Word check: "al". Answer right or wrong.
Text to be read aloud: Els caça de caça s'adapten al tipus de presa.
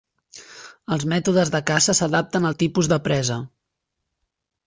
right